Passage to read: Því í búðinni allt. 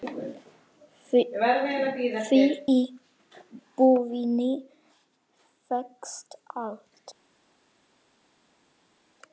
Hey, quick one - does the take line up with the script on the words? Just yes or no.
no